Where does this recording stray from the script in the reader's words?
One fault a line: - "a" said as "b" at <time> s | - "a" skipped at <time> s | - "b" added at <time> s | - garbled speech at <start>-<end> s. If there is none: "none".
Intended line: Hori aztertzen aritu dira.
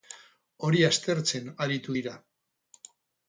none